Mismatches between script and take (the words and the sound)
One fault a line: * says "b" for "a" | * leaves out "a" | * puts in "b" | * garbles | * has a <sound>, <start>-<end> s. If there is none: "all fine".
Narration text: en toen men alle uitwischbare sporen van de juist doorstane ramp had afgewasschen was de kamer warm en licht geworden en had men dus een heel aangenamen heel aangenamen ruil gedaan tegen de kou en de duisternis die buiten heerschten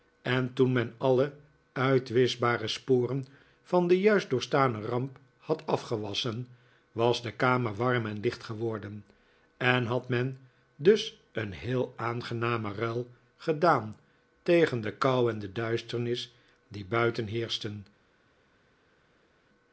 * leaves out "heel aangenamen"